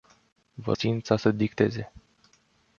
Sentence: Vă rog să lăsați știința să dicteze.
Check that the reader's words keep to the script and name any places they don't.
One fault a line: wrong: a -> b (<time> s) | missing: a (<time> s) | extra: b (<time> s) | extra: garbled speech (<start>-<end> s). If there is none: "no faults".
missing: rog să lăsați (0.7 s)